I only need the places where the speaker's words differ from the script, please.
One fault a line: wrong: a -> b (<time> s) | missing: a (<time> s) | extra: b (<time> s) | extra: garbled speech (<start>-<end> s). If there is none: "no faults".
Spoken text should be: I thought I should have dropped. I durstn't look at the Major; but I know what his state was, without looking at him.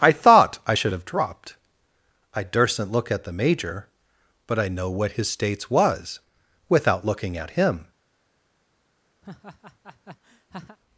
wrong: state -> states (5.3 s)